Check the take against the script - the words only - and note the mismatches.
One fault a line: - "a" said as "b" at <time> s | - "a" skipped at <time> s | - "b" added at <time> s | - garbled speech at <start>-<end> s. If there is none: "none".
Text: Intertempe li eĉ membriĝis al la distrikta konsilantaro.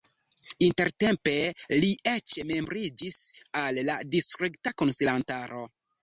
none